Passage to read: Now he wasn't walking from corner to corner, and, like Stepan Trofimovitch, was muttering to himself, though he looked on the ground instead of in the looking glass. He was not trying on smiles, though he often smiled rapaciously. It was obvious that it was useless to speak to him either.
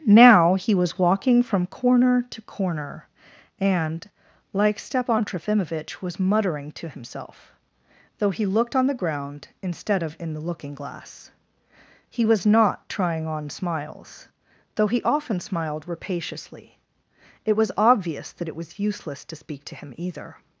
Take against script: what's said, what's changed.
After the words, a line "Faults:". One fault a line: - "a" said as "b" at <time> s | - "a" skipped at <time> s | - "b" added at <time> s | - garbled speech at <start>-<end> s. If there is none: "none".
Now he was walking from corner to corner, and, like Stepan Trofimovitch, was muttering to himself, though he looked on the ground instead of in the looking glass. He was not trying on smiles, though he often smiled rapaciously. It was obvious that it was useless to speak to him either.
Faults:
- "wasn't" said as "was" at 0.7 s